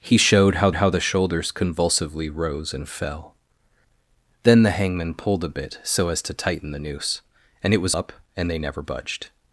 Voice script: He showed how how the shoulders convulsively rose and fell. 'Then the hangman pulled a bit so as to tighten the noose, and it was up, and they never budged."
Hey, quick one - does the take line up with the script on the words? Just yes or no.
yes